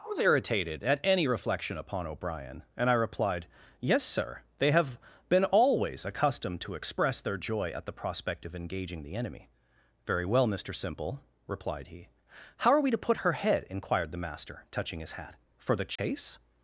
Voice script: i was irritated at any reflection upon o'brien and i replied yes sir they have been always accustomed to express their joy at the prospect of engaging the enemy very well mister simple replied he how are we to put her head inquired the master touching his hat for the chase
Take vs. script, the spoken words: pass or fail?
pass